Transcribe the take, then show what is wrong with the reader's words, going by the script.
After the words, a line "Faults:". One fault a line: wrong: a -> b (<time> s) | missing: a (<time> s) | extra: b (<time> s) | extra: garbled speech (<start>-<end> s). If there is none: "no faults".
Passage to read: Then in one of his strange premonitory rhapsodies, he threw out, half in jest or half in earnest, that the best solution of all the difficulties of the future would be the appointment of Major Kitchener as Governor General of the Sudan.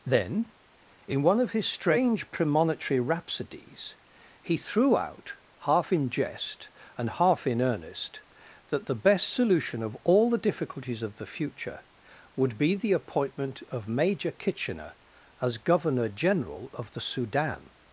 Then in one of his strange premonitory rhapsodies, he threw out, half in jest and half in earnest, that the best solution of all the difficulties of the future would be the appointment of Major Kitchener as Governor General of the Sudan.
Faults:
wrong: or -> and (7.0 s)